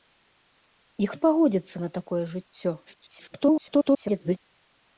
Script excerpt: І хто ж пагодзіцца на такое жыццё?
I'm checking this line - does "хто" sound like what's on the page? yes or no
no